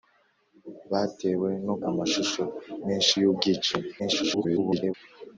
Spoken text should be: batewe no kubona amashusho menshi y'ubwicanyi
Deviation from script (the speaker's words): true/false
true